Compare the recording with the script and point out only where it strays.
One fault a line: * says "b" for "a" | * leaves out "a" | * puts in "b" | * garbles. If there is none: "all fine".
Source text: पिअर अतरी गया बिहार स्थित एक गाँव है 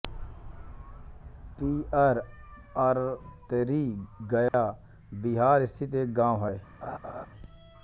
all fine